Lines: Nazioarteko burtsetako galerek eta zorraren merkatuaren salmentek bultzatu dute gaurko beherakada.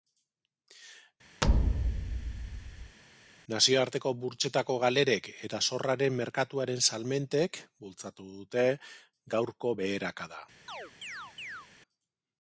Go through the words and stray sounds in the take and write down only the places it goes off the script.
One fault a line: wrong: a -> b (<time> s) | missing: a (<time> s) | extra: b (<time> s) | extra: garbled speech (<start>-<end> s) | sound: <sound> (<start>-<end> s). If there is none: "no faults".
sound: thud (1.4-3.0 s)
sound: chirp (10.7-11.7 s)